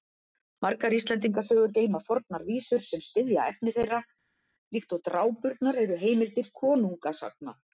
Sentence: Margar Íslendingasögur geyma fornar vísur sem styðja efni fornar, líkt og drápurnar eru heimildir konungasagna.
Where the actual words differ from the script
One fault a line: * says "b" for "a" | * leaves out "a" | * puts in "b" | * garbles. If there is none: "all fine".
* says "þeirra" for "fornar"